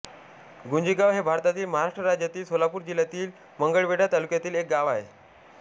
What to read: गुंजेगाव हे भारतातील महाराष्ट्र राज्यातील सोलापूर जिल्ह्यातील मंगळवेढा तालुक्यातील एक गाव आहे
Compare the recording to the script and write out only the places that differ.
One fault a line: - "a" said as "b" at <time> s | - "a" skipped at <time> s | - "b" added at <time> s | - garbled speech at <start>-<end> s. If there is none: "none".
none